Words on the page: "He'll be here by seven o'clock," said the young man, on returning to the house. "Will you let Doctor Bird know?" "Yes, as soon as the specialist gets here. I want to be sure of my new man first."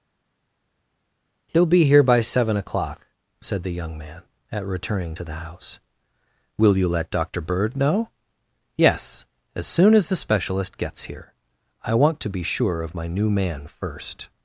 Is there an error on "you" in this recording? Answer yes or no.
no